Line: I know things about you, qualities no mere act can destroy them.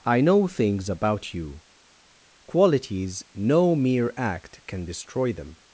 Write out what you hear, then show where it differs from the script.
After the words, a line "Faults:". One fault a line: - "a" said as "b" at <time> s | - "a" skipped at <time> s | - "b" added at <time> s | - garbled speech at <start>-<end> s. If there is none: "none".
I know things about you, qualities no mere act can destroy them.
Faults:
none